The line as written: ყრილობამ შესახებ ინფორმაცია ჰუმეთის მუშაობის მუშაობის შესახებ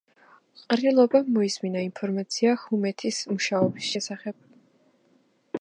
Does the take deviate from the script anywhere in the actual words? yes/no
yes